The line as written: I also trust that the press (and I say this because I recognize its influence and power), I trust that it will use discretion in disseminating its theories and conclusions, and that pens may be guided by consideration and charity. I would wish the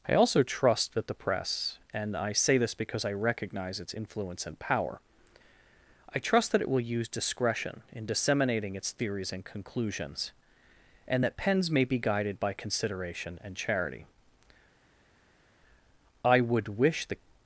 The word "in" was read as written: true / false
true